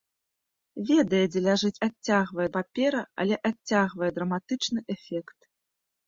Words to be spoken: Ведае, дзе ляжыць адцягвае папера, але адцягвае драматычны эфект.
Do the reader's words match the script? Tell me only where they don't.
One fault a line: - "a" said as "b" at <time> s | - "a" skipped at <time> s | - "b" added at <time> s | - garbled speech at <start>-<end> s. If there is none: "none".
none